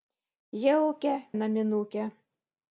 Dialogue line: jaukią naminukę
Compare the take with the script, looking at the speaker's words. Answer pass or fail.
pass